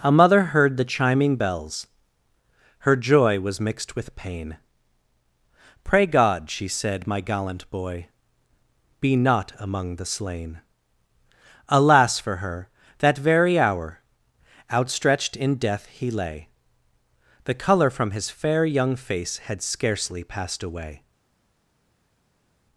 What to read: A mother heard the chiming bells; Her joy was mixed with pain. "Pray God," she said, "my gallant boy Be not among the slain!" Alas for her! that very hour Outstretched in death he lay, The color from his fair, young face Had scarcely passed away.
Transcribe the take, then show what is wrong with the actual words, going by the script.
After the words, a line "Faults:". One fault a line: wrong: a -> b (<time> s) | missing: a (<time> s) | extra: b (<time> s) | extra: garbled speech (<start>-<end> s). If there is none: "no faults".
A mother heard the chiming bells; Her joy was mixed with pain. "Pray God," she said, "my gallant boy Be not among the slain!" Alas for her! that very hour Outstretched in death he lay, The color from his fair, young face Had scarcely passed away.
Faults:
no faults